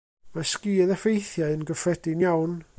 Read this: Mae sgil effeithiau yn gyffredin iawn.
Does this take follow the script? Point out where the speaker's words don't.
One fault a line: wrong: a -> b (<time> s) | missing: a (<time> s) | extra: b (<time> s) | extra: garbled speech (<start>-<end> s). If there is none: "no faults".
no faults